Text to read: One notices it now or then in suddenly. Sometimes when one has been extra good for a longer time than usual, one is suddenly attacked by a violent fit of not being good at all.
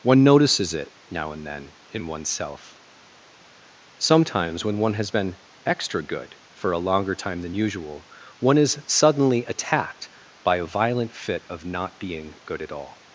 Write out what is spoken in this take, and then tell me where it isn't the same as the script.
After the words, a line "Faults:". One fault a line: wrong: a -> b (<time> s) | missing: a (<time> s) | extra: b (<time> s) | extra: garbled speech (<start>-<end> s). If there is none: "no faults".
One notices it now and then in oneself. Sometimes when one has been extra good for a longer time than usual, one is suddenly attacked by a violent fit of not being good at all.
Faults:
wrong: or -> and (1.3 s)
wrong: suddenly -> oneself (2.1 s)